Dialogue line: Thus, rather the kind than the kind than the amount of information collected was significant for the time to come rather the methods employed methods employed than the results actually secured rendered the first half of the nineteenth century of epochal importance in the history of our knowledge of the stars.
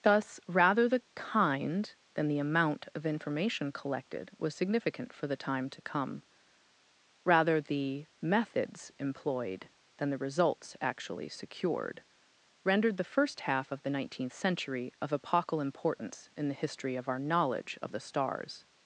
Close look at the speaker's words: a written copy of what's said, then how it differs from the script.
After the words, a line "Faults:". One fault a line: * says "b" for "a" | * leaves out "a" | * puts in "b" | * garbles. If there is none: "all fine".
Thus, rather the kind than the amount of information collected was significant for the time to come rather the methods employed than the results actually secured rendered the first half of the nineteenth century of epochal importance in the history of our knowledge of the stars.
Faults:
* leaves out "kind than the"
* leaves out "methods employed"